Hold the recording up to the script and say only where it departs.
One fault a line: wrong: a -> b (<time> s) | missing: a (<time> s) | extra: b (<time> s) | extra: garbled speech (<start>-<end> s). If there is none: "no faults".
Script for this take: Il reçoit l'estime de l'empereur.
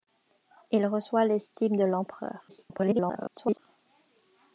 extra: garbled speech (2.5-3.6 s)